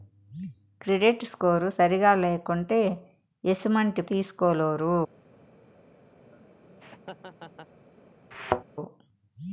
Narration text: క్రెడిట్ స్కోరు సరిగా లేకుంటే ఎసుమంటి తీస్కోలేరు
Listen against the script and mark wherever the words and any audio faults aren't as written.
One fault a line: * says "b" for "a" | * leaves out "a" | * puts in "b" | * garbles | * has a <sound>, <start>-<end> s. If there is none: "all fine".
* has a laugh, 6.2-7.7 s
* has a thud, 8.3-8.6 s